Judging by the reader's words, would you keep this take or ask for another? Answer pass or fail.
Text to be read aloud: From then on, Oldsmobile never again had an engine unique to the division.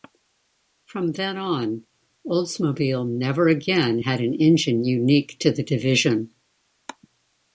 pass